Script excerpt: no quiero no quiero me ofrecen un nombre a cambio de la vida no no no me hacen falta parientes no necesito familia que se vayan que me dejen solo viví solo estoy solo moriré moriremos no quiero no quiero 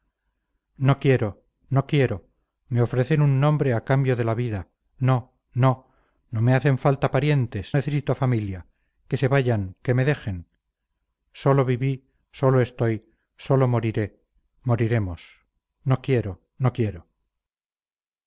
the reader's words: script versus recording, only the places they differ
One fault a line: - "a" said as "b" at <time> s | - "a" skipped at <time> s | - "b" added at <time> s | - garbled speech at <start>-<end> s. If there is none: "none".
- "no" skipped at 7.8 s